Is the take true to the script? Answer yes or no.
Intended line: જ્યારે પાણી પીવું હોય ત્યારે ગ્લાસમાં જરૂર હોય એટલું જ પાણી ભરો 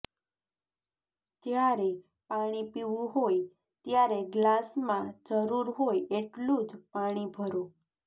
yes